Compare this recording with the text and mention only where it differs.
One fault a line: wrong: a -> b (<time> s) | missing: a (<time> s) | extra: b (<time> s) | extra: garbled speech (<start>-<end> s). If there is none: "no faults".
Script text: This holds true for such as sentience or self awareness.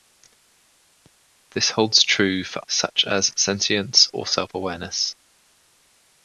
no faults